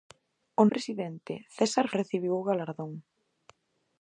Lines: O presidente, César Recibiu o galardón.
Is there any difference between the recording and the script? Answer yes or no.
no